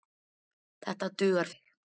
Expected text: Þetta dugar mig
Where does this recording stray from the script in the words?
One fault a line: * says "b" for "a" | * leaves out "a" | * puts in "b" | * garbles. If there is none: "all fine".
all fine